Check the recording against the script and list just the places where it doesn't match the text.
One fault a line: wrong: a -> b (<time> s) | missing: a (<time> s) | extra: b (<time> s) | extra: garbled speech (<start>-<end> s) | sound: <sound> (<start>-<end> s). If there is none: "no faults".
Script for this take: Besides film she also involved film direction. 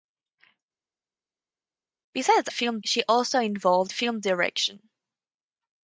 no faults